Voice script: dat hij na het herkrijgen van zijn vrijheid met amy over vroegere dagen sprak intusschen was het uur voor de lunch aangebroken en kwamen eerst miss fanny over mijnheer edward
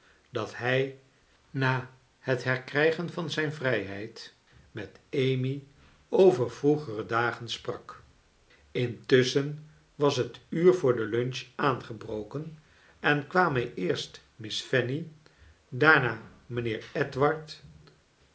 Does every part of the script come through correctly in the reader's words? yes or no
no